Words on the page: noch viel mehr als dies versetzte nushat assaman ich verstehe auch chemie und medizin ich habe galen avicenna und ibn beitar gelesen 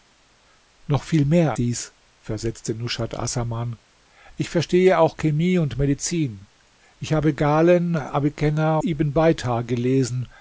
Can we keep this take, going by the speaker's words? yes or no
no